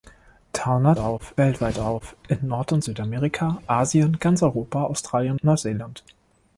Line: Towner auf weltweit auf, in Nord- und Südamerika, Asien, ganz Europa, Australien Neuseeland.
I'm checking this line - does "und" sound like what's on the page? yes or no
yes